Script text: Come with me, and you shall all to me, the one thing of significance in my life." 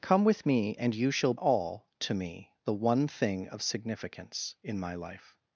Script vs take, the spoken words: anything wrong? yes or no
no